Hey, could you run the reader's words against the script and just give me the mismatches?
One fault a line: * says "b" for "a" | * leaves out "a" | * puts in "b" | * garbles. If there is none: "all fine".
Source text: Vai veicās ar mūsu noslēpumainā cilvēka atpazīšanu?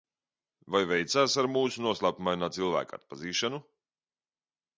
all fine